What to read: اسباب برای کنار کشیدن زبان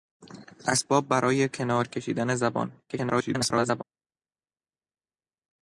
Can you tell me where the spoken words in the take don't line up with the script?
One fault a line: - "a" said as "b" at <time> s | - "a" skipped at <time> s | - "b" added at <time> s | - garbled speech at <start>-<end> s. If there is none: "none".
- garbled speech at 2.9-3.8 s